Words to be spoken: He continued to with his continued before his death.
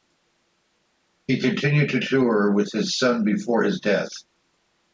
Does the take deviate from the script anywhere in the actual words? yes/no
yes